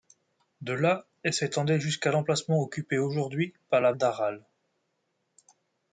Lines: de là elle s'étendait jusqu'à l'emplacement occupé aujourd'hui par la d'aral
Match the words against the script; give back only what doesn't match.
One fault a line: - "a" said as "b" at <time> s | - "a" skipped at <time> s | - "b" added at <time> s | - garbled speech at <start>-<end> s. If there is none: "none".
none